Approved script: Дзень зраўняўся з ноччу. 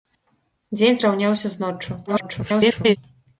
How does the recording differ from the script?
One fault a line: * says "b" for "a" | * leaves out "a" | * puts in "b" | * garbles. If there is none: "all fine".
* garbles